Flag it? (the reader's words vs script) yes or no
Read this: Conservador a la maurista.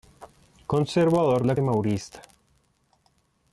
no